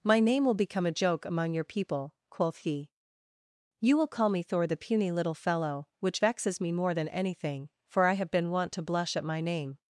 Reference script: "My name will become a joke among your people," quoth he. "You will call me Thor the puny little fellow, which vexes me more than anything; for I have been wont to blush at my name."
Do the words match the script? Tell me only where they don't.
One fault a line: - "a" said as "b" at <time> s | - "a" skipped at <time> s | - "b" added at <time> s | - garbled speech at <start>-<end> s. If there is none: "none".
none